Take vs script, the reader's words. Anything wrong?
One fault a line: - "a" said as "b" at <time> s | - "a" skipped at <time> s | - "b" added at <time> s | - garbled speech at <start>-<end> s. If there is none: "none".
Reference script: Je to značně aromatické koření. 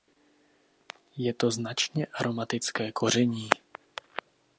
none